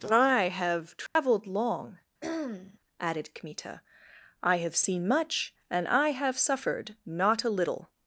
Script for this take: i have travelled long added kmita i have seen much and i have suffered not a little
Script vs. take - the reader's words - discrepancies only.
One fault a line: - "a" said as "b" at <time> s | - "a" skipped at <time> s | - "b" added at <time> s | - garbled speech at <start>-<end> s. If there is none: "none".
none